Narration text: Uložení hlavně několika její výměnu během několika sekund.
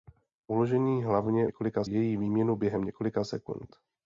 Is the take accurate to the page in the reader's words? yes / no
yes